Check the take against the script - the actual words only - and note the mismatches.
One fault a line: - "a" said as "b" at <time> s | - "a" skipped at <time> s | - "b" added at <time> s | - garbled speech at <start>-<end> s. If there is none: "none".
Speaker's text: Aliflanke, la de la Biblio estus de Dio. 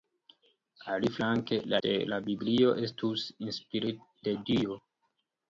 none